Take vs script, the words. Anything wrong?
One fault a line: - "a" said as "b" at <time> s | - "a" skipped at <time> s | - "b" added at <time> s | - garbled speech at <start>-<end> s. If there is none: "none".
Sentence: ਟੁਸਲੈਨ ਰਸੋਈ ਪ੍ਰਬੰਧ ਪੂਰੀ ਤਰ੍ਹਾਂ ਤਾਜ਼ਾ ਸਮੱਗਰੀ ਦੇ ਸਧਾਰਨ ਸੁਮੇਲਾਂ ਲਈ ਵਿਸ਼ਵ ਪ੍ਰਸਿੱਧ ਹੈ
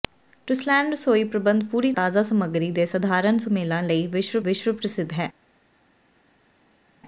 - "ਤਰ੍ਹਾਂ" skipped at 1.9 s
- "ਵਿਸ਼ਵ" added at 4.4 s